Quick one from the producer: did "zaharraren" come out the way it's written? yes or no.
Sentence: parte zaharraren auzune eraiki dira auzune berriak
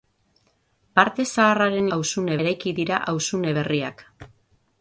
yes